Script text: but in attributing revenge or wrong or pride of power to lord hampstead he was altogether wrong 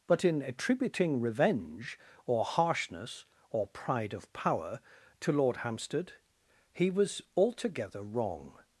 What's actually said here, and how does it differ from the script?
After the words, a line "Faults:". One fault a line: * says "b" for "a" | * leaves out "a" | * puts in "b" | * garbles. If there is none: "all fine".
but in attributing revenge or harshness or pride of power to lord hampstead he was altogether wrong
Faults:
* says "harshness" for "wrong"